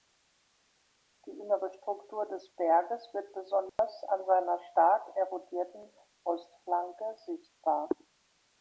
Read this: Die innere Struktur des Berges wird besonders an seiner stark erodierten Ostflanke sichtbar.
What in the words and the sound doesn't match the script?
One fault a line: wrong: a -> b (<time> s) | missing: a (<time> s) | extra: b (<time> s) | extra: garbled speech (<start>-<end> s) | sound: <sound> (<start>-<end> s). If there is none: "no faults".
sound: dropout (3.7-3.8 s)